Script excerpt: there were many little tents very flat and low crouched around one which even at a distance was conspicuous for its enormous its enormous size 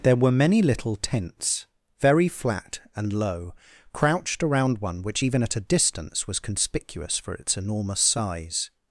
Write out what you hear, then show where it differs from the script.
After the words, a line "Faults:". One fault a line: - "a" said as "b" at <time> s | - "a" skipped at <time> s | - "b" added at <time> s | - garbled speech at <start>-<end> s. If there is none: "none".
there were many little tents very flat and low crouched around one which even at a distance was conspicuous for its enormous size
Faults:
- "its enormous" skipped at 8.0 s